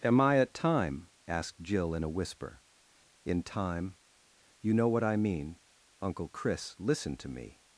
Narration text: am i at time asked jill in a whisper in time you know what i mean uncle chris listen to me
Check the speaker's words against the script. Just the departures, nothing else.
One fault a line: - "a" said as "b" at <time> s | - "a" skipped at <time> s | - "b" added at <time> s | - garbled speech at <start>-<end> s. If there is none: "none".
none